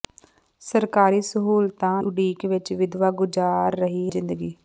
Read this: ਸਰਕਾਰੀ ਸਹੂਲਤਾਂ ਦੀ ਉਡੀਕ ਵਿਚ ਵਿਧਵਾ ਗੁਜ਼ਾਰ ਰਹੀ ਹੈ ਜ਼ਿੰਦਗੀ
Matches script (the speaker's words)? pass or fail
fail